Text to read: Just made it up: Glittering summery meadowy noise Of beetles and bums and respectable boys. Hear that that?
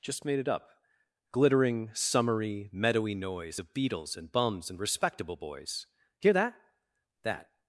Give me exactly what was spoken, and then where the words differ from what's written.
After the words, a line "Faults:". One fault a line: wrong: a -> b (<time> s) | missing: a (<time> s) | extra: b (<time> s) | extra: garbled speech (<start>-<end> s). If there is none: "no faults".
Just made it up: Glittering summery meadowy noise Of beetles and bums and respectable boys. Hear that that?
Faults:
no faults